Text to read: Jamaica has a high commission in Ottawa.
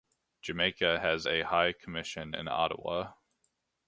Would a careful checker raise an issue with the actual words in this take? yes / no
no